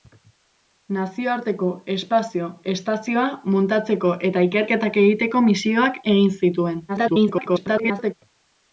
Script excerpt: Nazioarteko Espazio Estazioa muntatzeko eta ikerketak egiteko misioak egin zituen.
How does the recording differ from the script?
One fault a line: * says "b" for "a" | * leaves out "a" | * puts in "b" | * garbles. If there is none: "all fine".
* garbles